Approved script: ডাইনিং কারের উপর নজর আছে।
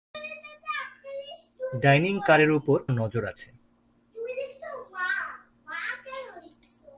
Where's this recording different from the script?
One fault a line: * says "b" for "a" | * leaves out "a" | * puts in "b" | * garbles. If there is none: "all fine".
all fine